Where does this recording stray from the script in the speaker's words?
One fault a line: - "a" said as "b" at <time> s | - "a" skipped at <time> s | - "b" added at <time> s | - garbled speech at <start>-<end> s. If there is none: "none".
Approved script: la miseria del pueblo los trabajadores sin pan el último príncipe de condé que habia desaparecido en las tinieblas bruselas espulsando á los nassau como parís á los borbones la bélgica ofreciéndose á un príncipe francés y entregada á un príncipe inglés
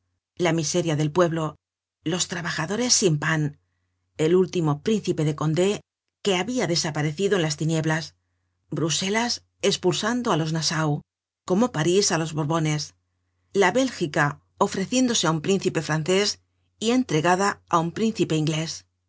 none